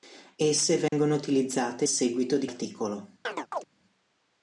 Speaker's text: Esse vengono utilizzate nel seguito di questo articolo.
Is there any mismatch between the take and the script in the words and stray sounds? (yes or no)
yes